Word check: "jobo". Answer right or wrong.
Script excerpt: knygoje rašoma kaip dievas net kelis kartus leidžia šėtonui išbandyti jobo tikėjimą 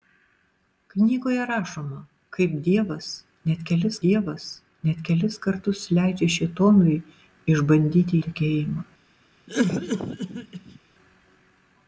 wrong